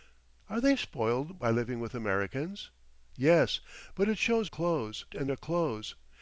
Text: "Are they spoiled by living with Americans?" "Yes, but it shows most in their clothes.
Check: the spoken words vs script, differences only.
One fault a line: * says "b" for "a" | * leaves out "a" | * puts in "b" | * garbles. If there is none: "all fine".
* says "clothes" for "most"